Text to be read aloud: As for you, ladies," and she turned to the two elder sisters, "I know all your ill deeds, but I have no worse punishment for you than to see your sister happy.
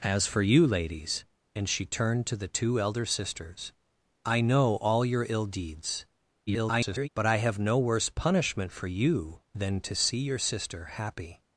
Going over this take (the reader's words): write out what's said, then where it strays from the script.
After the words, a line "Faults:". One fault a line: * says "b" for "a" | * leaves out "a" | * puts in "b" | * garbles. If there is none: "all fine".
As for you, ladies," and she turned to the two elder sisters, "I know all your ill deeds, [garbled] but I have no worse punishment for you than to see your sister happy.
Faults:
* garbles